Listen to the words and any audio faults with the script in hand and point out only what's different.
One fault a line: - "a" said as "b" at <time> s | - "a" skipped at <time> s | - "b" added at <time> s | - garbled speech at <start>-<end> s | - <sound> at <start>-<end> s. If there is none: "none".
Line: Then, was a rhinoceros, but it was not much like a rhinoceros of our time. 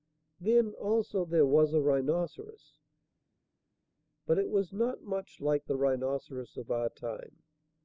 - "also there" added at 0.7 s
- "a" said as "the" at 5.7 s